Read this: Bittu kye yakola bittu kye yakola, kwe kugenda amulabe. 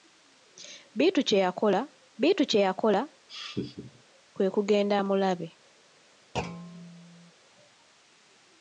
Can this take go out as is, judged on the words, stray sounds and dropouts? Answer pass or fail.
fail